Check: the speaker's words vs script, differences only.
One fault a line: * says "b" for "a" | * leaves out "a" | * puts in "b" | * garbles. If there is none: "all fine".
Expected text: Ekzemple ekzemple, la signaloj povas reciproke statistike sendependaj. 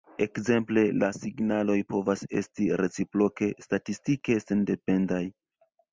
* leaves out "ekzemple"
* puts in "esti"